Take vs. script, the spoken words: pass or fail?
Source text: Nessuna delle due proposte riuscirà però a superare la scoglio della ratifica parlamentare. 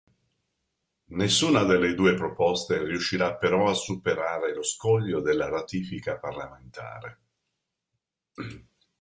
fail